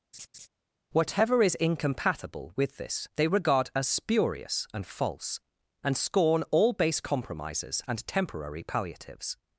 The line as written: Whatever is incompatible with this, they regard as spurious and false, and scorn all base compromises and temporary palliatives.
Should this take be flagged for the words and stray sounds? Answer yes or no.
yes